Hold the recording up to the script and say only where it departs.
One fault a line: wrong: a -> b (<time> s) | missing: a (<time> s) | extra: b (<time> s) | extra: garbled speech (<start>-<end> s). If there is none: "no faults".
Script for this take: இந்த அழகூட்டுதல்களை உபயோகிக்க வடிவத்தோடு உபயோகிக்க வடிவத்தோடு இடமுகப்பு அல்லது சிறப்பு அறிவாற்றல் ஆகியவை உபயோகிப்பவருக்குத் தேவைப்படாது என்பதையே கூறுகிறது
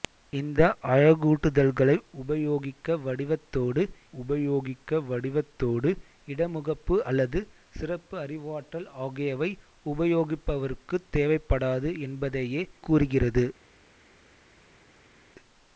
no faults